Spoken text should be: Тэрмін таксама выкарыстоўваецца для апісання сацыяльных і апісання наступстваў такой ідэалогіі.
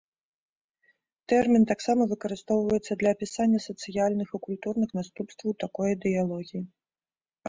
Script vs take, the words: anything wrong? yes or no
yes